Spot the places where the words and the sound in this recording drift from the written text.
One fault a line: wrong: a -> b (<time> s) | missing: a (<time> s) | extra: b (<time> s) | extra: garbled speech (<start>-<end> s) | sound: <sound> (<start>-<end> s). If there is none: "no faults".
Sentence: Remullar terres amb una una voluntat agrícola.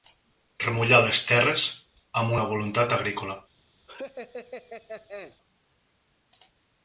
extra: les (1.1 s)
missing: una (2.4 s)
sound: laugh (3.9-5.4 s)